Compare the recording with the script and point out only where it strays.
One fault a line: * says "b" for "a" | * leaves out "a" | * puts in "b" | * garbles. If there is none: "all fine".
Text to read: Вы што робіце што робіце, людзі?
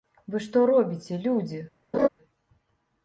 * leaves out "што робіце"